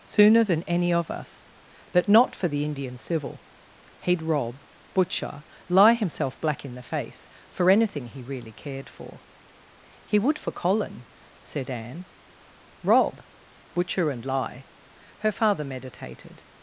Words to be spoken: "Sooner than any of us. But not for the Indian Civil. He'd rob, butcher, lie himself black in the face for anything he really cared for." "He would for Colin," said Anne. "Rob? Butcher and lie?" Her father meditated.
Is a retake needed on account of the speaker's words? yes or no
no